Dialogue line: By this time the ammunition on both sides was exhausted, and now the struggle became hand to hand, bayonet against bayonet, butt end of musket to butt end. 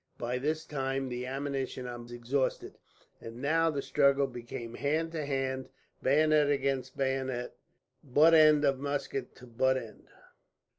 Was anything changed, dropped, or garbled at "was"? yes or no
yes